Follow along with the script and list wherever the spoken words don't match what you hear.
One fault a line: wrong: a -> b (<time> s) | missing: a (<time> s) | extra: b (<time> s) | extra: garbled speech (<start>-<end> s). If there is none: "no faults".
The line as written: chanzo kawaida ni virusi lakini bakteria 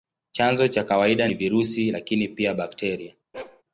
extra: cha (0.7 s)
extra: pia (2.3 s)